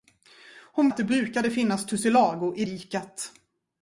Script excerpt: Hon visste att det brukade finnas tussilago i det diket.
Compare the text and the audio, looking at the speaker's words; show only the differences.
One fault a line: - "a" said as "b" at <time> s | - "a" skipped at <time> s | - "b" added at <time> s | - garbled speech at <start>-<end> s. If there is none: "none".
- "visste" skipped at 0.9 s
- "det" skipped at 2.7 s